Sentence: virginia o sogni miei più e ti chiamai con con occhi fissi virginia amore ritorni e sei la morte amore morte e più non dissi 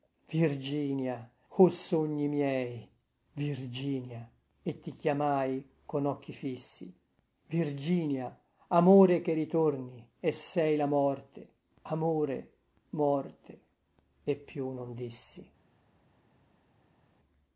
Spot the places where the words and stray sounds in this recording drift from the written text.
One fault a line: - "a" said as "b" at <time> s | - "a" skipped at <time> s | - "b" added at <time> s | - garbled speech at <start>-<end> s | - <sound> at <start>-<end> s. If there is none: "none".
- "più" said as "virginia" at 3.3 s
- "con" skipped at 6.0 s
- "che" added at 9.2 s